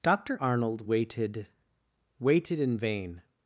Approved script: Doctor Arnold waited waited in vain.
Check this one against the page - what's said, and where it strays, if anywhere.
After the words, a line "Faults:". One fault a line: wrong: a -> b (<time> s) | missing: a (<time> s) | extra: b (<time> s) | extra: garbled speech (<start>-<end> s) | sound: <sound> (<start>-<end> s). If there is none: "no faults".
Doctor Arnold waited waited in vain.
Faults:
no faults